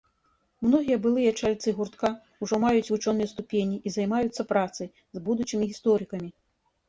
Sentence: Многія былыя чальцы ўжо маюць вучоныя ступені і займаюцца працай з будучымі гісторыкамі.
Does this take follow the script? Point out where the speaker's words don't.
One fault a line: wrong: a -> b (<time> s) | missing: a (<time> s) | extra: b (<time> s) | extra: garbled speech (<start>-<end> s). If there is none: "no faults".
extra: гуртка (1.8 s)